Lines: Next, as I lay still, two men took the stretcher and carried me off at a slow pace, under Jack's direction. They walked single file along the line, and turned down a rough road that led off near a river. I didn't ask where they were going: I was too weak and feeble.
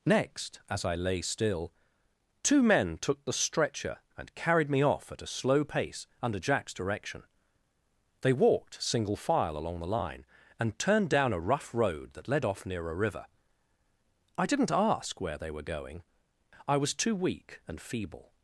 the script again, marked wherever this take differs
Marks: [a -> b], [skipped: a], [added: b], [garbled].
Next, as I lay still, two men took the stretcher and carried me off at a slow pace, under Jack's direction. They walked single file along the line, and turned down a rough road that led off near a river. I didn't ask where they were going: I was too weak and feeble.